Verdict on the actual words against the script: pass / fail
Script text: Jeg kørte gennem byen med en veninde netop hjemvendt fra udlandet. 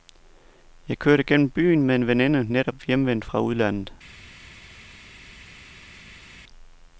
pass